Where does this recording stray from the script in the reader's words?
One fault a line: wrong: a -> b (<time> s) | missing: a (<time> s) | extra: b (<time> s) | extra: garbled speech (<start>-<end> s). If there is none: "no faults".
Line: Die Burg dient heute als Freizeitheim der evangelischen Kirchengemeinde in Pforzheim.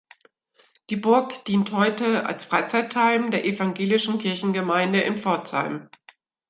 no faults